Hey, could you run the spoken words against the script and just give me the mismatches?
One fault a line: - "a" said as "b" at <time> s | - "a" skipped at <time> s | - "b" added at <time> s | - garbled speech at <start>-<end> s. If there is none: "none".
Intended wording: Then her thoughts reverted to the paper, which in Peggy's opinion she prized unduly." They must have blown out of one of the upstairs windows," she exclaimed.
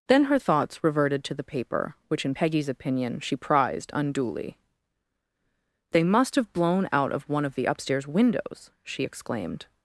none